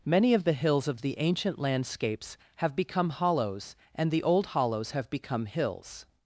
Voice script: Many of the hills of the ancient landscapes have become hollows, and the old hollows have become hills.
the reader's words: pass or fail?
pass